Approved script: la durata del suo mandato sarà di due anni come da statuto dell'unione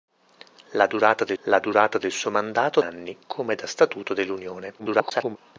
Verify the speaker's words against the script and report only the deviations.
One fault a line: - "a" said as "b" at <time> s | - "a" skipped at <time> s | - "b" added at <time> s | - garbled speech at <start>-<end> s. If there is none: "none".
- "suo mandato sarà di due" said as "la durata del suo mandato" at 1.4 s
- garbled speech at 4.8-5.4 s